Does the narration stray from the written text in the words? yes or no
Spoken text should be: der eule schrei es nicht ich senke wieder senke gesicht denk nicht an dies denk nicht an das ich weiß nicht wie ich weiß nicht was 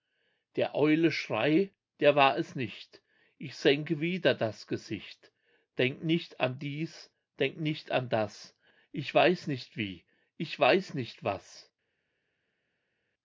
yes